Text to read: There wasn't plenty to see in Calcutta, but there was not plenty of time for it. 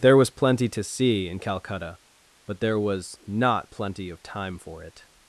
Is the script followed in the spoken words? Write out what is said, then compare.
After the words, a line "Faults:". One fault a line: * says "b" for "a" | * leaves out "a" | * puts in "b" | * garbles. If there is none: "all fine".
There was plenty to see in Calcutta, but there was not plenty of time for it.
Faults:
* says "was" for "wasn't"